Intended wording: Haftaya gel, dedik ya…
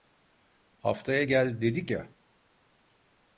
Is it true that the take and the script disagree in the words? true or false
false